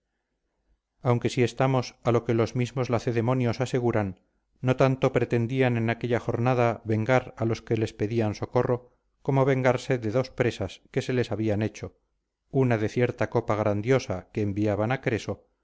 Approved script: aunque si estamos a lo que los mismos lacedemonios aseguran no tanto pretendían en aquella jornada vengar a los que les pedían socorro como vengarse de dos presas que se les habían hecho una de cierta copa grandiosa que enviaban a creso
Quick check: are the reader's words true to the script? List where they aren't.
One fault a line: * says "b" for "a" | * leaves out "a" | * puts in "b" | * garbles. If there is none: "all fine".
all fine